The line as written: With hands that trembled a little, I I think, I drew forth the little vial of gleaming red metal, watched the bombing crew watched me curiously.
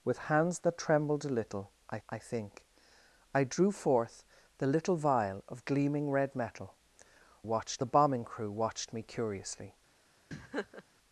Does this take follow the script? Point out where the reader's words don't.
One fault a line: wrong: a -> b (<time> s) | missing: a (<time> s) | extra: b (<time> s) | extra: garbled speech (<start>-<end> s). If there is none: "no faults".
no faults